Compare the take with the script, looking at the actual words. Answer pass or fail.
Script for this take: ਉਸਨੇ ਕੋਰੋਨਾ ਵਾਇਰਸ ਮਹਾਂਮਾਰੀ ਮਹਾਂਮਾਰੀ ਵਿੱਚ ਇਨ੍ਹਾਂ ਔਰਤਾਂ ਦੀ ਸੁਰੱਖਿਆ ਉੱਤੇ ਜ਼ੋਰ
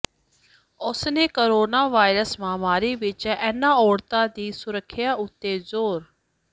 fail